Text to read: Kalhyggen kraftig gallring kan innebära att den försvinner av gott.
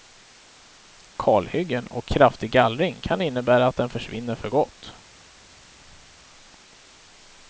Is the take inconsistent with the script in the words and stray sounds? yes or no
yes